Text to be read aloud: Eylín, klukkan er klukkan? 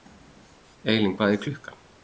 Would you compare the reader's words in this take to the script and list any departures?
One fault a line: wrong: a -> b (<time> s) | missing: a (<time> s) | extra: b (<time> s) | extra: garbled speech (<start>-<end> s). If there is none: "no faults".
wrong: klukkan -> hvað (1.2 s)